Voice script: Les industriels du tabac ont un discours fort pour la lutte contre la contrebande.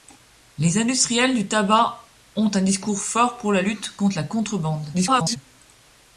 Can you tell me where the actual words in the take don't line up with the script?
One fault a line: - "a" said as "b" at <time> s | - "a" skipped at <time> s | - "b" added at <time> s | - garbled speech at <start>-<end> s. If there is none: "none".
- garbled speech at 4.9-5.4 s